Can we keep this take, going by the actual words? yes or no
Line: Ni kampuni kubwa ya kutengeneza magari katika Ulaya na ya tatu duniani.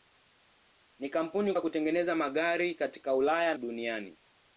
no